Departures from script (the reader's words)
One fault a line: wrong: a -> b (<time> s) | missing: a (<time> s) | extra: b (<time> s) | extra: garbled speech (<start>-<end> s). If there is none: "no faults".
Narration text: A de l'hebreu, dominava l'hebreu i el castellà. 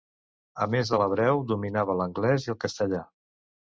extra: més (0.8 s)
wrong: l'hebreu -> l'anglès (2.0 s)